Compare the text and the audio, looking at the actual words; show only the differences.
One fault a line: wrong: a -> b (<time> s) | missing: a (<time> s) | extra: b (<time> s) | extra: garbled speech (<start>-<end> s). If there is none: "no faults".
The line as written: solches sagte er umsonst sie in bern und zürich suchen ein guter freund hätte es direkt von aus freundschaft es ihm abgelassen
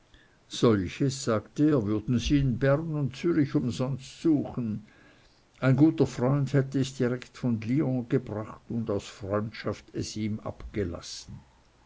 wrong: umsonst -> würden (1.9 s)
extra: umsonst (3.5 s)
extra: lyon gebracht und (7.6 s)